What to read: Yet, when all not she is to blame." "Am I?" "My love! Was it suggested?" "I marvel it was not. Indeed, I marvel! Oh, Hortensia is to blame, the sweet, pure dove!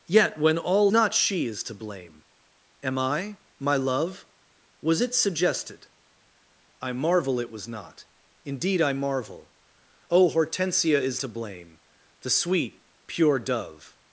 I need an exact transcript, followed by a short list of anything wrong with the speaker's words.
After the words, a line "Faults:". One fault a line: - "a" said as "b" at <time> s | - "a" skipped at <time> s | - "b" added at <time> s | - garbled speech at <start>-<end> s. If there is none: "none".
Yet, when all not she is to blame." "Am I?" "My love! Was it suggested?" "I marvel it was not. Indeed, I marvel! Oh, Hortensia is to blame, the sweet, pure dove!
Faults:
none